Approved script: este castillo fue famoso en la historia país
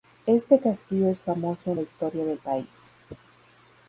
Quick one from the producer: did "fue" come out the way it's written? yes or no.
no